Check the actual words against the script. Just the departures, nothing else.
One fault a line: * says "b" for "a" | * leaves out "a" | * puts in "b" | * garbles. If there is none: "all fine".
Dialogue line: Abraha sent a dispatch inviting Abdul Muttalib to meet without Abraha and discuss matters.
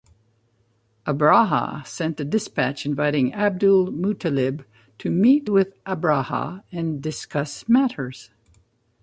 * says "with" for "without"